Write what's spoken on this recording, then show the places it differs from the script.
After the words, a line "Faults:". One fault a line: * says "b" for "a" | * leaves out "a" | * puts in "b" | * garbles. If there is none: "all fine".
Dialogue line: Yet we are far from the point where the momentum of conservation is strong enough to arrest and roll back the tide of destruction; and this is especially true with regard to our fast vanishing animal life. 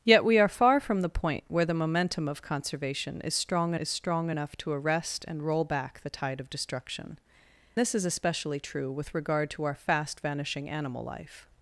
Yet we are far from the point where the momentum of conservation is strong is strong enough to arrest and roll back the tide of destruction; this is especially true with regard to our fast vanishing animal life.
Faults:
* puts in "is strong"
* leaves out "and"